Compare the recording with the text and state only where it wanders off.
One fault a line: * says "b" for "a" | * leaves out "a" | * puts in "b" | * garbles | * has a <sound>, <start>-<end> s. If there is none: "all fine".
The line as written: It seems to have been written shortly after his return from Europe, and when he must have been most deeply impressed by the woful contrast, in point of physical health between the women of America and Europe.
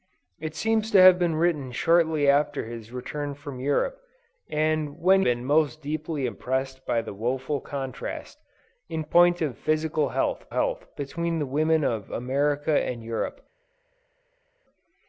* leaves out "he must have"
* puts in "health"